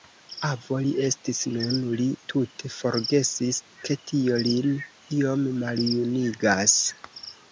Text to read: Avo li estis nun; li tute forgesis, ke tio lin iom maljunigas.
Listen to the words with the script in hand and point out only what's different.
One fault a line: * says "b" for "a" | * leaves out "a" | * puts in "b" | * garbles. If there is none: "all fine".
all fine